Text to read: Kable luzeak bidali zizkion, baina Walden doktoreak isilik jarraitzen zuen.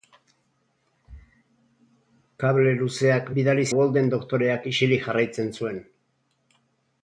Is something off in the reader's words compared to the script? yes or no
yes